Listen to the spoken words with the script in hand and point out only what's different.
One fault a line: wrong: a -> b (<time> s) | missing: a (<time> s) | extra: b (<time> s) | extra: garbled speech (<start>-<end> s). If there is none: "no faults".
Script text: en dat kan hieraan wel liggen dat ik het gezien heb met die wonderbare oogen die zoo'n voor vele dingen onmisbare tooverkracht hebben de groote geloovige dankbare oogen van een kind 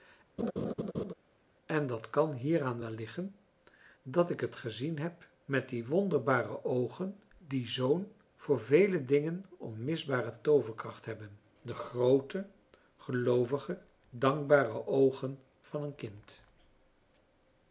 no faults